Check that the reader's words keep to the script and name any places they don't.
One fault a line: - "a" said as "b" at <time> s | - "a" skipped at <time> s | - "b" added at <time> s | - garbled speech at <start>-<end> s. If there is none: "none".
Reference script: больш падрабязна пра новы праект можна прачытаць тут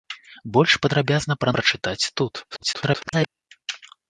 - "новы праект можна" skipped at 1.5 s
- garbled speech at 2.5-3.3 s